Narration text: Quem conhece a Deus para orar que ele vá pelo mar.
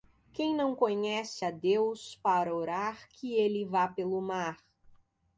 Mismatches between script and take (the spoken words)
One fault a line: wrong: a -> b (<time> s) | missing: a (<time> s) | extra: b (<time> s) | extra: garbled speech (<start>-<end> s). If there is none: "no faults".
extra: não (0.6 s)